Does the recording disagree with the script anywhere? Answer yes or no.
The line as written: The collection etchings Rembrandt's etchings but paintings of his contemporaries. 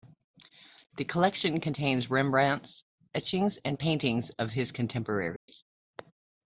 yes